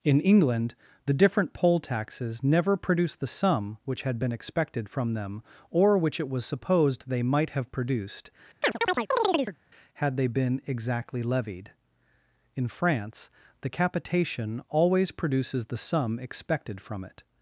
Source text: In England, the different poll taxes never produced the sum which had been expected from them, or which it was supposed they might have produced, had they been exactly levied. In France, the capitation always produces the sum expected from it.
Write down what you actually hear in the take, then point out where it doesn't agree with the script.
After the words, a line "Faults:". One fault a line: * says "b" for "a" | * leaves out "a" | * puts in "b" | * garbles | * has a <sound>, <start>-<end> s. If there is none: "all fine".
In England, the different poll taxes never produced the sum which had been expected from them, or which it was supposed they might have produced, had they been exactly levied. In France, the capitation always produces the sum expected from it.
Faults:
* has a chirp, 8.6-9.6 s